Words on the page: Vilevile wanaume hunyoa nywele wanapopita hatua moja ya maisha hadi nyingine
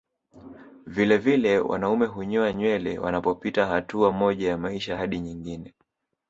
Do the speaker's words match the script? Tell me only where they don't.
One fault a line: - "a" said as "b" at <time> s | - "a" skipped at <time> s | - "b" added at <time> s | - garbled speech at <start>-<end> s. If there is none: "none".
none